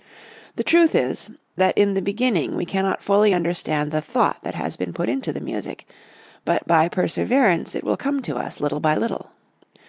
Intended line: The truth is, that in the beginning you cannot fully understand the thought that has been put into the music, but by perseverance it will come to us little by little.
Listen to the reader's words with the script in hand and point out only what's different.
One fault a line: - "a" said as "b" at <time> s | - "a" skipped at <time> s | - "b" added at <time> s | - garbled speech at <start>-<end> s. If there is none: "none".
- "you" said as "we" at 2.5 s